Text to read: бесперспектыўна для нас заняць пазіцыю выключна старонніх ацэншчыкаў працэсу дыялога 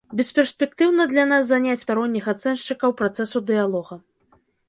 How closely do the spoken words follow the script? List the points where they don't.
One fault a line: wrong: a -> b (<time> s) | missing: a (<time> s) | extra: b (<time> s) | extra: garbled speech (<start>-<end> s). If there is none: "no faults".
missing: пазіцыю выключна (1.9 s)